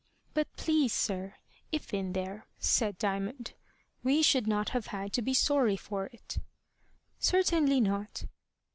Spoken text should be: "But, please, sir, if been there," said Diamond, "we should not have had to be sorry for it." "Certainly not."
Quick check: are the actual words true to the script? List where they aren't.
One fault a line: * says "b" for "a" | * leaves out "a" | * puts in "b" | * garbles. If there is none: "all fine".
all fine